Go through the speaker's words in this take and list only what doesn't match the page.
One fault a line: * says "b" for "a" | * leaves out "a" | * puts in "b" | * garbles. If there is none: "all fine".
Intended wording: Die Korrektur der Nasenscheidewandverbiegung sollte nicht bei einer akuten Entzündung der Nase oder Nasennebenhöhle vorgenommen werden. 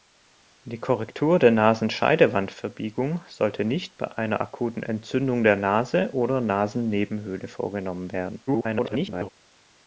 * garbles